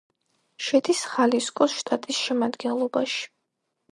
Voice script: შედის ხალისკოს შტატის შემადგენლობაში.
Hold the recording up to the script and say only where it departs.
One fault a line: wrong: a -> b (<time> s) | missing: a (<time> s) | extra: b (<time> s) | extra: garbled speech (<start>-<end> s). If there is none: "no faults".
no faults